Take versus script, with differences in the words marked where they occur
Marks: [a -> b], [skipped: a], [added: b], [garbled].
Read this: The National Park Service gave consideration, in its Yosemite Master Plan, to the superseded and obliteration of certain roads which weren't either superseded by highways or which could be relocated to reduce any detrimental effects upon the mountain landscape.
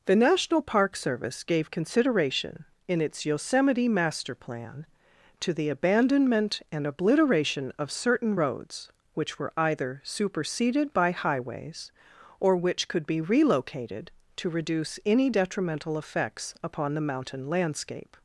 The National Park Service gave consideration, in its Yosemite Master Plan, to the [superseded -> abandonment] and obliteration of certain roads which [weren't -> were] either superseded by highways or which could be relocated to reduce any detrimental effects upon the mountain landscape.